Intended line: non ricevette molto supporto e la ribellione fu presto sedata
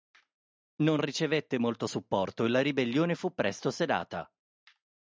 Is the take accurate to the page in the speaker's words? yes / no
yes